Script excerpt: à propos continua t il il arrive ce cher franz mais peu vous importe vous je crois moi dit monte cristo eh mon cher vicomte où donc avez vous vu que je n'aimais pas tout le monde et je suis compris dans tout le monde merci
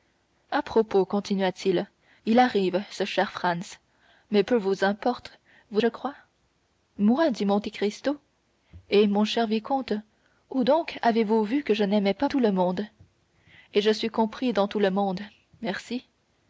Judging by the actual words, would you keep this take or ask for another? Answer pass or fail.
pass